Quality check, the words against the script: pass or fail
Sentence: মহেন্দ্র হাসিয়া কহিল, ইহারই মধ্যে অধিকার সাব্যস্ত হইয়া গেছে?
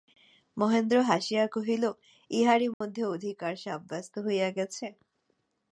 pass